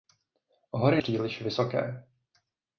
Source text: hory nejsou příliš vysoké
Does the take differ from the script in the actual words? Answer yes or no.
yes